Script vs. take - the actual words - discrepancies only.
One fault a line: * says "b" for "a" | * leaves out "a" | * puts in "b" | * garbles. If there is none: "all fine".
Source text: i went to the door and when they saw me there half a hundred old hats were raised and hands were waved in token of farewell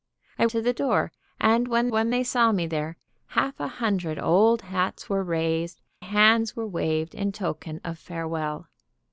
* leaves out "went"
* puts in "when"
* leaves out "and"